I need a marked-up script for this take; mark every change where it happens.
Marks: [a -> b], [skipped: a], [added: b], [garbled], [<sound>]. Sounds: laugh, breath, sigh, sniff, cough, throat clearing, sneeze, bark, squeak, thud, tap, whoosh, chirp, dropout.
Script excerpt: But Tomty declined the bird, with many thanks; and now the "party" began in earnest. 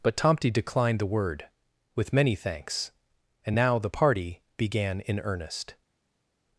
But Tomty declined the [bird, -> word] with many thanks; and now the "party" began in earnest.